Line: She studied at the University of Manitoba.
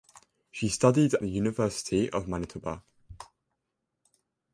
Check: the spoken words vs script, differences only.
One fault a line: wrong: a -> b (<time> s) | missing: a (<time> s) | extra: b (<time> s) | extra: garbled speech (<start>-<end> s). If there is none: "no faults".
missing: at (1.1 s)